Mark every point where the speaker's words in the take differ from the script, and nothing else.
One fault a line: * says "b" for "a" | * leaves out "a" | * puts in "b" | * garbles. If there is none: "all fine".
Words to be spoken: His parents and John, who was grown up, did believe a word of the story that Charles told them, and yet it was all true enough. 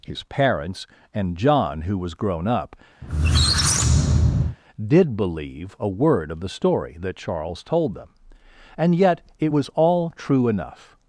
all fine